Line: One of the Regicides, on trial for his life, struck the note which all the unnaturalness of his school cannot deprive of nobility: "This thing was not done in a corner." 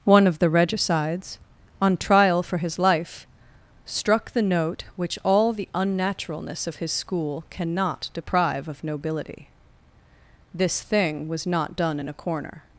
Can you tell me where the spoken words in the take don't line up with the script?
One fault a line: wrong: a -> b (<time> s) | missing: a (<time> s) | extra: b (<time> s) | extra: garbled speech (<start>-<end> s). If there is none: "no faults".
no faults